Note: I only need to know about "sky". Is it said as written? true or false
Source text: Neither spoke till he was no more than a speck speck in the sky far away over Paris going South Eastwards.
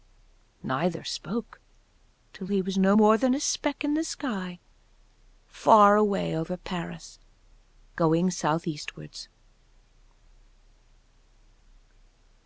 true